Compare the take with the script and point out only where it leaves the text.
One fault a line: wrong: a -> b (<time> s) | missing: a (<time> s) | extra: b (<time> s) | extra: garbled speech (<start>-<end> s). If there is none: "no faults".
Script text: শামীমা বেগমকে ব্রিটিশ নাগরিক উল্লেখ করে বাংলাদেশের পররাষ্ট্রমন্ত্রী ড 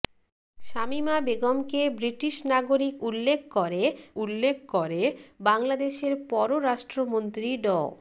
extra: উল্লেখ করে (4.2 s)